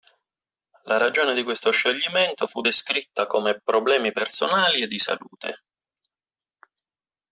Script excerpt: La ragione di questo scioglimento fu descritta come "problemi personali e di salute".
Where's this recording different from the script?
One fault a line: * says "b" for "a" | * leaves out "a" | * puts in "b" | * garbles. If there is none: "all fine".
all fine